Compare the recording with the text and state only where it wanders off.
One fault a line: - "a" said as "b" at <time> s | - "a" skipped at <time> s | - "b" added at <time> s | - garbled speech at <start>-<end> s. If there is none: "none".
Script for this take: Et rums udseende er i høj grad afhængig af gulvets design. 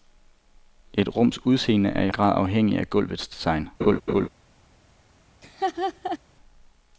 - "høj" skipped at 2.1 s